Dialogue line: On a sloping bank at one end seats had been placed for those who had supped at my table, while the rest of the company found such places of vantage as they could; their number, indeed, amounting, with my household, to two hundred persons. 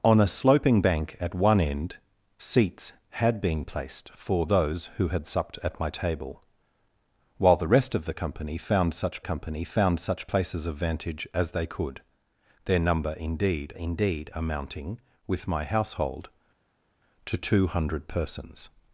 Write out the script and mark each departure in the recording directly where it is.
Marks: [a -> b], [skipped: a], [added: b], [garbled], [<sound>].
On a sloping bank at one end seats had been placed for those who had supped at my table, while the rest of the company found such [added: company found such] places of vantage as they could; their number, indeed, [added: indeed] amounting, with my household, to two hundred persons.